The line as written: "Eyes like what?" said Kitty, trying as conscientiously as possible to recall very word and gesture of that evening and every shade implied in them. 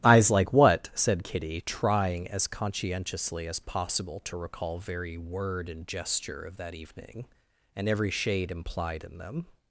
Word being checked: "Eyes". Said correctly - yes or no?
yes